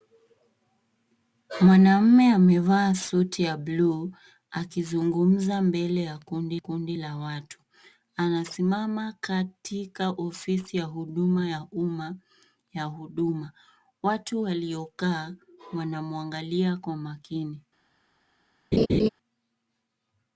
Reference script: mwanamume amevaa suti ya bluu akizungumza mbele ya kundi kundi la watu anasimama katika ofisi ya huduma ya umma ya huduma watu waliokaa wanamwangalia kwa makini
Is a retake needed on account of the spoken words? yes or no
no